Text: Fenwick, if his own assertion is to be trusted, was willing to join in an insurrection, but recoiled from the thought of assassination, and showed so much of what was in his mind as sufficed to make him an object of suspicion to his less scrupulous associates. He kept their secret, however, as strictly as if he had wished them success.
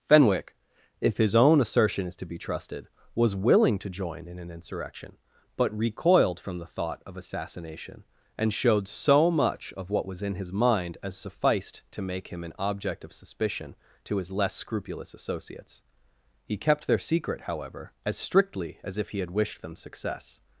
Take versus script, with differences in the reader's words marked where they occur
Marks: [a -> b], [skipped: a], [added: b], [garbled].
Fenwick, if his own assertion is to be trusted, was willing to join in an insurrection, but recoiled from the thought of assassination, and showed so much of what was in his mind as sufficed to make him an object of suspicion to his less scrupulous associates. He kept their secret, however, as strictly as if he had wished them success.